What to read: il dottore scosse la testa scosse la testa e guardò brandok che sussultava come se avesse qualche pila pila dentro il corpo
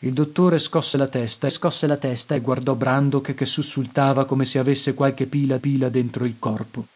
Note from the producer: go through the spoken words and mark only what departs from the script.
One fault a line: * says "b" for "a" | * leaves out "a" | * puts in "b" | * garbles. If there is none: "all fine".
all fine